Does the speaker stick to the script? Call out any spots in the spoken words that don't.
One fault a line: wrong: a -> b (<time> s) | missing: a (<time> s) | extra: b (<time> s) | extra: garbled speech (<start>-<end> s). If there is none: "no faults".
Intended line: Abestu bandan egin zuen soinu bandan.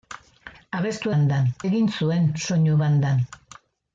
no faults